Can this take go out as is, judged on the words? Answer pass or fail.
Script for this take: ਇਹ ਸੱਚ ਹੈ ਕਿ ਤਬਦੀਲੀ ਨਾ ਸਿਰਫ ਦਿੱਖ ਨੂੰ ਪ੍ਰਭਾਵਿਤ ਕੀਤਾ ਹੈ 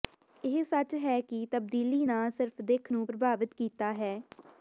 pass